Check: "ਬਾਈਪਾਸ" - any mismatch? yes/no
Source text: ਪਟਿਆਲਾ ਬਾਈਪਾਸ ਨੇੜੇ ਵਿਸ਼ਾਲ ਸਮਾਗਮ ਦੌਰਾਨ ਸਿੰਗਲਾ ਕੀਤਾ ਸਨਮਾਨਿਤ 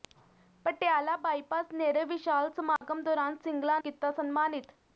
no